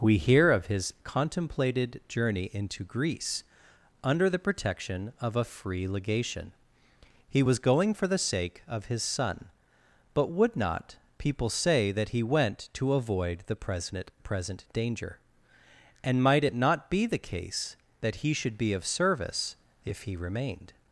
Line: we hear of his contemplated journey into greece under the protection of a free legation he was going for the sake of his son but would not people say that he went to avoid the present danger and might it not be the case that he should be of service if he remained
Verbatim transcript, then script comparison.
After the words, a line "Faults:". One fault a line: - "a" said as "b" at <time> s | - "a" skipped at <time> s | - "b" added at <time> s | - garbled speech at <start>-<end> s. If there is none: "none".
we hear of his contemplated journey into greece under the protection of a free legation he was going for the sake of his son but would not people say that he went to avoid the present present danger and might it not be the case that he should be of service if he remained
Faults:
- "present" added at 14.2 s